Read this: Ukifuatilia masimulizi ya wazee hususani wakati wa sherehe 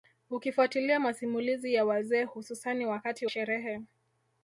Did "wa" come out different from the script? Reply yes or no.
yes